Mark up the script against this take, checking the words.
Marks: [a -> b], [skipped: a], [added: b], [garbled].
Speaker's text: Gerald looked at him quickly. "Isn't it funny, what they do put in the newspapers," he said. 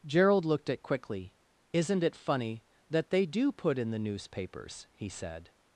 Gerald looked at [skipped: him] quickly. "Isn't it funny, [what -> that] they do put in the newspapers," he said.